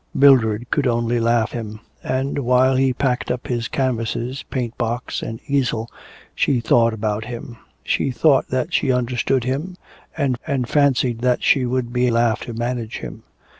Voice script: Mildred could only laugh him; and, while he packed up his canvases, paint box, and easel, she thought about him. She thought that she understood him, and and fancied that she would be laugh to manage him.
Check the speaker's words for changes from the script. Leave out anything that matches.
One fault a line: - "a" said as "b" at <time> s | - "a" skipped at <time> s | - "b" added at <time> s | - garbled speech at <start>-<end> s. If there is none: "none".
none